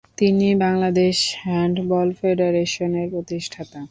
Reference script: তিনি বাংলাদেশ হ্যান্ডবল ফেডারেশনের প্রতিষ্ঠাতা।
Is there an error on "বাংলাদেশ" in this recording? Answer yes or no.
no